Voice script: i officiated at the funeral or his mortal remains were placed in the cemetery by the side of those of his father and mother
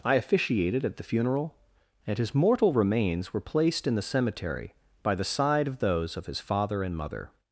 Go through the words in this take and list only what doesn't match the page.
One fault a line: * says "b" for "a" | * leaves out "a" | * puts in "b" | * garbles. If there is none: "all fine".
* says "and" for "or"